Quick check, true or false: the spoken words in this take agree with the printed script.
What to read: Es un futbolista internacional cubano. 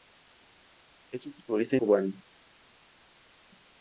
false